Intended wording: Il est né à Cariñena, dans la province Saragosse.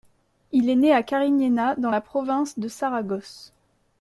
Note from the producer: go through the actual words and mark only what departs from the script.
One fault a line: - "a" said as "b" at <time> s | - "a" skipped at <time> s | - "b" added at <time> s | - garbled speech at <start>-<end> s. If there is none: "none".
- "de" added at 2.6 s